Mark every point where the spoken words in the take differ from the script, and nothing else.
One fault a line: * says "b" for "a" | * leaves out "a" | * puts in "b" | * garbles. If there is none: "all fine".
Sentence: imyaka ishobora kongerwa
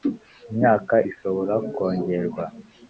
all fine